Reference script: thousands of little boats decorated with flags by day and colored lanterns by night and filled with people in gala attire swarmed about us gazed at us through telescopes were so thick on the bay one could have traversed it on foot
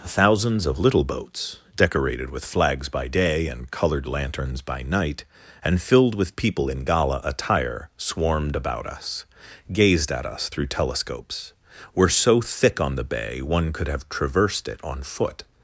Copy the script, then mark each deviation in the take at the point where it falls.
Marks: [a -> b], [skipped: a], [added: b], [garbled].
thousands of little boats decorated with flags by day and colored lanterns by night and filled with people in gala attire swarmed about us gazed at us through telescopes were so thick on the bay one could have traversed it on foot